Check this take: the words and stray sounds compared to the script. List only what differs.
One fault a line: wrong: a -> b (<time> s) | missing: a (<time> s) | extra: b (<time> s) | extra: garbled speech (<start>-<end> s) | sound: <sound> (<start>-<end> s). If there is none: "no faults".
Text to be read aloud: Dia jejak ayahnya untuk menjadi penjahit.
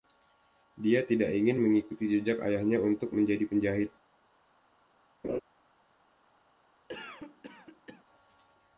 extra: tidak ingin mengikuti (1.1 s)
sound: laugh (5.2-5.4 s)
sound: cough (6.9-8.0 s)